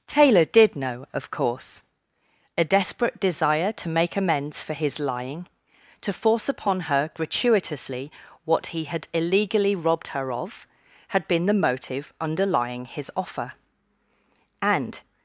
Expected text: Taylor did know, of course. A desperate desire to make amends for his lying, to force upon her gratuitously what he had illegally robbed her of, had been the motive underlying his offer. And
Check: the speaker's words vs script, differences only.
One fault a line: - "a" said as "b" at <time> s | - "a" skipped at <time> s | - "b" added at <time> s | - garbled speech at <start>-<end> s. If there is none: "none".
none